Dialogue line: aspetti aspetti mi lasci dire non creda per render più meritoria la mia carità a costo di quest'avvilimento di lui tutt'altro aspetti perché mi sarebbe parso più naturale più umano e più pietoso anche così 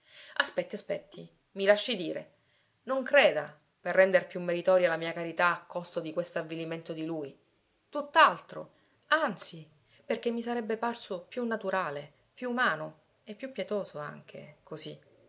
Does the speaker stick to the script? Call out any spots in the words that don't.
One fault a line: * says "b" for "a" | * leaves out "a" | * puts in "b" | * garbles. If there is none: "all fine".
* says "anzi" for "aspetti"